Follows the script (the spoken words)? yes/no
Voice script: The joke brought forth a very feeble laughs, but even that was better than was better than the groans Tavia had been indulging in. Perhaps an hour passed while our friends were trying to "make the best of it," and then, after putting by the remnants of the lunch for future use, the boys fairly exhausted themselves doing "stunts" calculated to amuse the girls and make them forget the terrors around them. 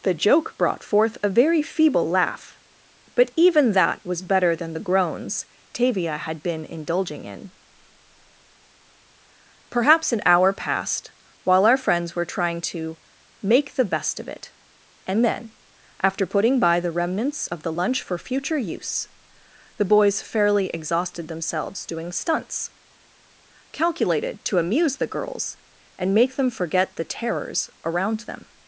no